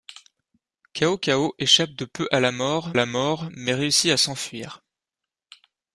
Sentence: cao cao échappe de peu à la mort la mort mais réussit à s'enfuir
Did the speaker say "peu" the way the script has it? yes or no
yes